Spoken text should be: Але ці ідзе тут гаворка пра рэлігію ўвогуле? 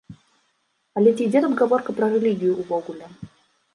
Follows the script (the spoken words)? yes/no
yes